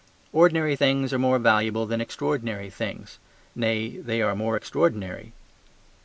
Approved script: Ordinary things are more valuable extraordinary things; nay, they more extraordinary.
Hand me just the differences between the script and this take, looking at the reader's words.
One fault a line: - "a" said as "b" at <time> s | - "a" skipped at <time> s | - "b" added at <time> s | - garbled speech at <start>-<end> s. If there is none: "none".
- "than" added at 1.9 s
- "are" added at 4.2 s